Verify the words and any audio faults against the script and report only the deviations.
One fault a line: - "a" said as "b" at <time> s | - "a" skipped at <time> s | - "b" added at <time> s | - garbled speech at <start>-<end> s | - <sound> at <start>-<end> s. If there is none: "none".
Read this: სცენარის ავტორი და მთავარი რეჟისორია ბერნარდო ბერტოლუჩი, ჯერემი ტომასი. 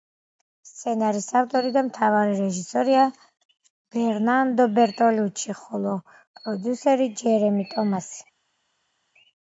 - "ხოლო პროდიუსერი" added at 5.6 s